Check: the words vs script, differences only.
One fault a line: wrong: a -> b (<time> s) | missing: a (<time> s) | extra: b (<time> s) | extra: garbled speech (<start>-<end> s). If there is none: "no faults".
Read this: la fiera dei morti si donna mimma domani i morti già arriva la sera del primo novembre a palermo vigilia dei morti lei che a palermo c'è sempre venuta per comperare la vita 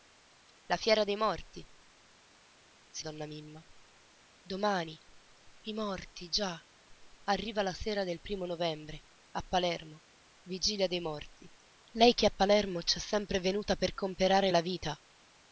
no faults